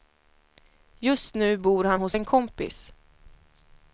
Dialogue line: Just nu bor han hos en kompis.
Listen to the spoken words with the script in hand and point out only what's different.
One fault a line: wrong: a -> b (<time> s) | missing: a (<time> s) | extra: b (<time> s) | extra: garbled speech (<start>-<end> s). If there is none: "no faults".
no faults